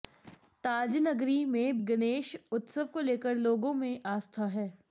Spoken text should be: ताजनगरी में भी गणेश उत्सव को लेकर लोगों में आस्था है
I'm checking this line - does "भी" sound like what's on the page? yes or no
no